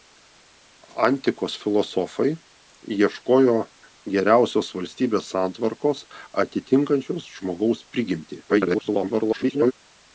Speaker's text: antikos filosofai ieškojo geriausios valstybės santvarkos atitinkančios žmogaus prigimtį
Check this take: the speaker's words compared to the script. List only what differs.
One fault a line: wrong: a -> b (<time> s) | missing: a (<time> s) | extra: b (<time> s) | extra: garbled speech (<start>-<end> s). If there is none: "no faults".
extra: garbled speech (8.5-9.7 s)